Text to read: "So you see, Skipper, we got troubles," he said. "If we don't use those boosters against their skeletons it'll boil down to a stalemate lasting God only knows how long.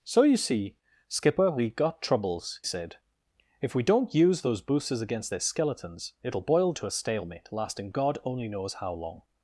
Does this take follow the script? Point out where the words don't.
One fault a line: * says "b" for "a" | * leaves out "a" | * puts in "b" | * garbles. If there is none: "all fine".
* leaves out "he"
* leaves out "down"